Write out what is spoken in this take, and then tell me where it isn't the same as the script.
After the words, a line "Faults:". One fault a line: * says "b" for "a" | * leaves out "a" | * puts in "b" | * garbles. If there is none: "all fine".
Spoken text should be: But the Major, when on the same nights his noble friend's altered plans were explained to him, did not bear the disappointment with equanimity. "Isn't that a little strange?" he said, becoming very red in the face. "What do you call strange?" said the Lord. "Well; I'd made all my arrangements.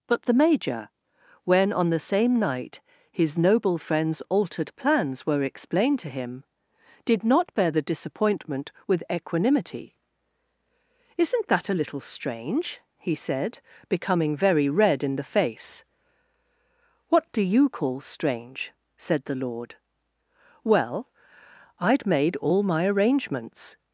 But the Major, when on the same night his noble friend's altered plans were explained to him, did not bear the disappointment with equanimity. "Isn't that a little strange?" he said, becoming very red in the face. "What do you call strange?" said the Lord. "Well; I'd made all my arrangements.
Faults:
* says "night" for "nights"